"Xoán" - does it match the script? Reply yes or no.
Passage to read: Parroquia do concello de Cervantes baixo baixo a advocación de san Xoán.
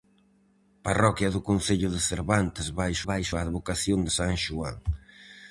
yes